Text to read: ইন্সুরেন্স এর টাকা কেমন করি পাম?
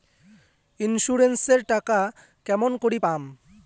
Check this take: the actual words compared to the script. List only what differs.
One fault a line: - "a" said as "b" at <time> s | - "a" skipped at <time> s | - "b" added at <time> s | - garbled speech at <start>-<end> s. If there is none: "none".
none